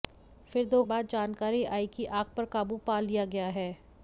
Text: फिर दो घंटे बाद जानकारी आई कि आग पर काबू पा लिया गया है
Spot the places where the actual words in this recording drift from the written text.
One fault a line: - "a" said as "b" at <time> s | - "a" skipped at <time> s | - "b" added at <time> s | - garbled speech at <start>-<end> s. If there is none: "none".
- "घंटे" skipped at 0.8 s